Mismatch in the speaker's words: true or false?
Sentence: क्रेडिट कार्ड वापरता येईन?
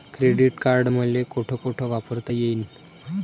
true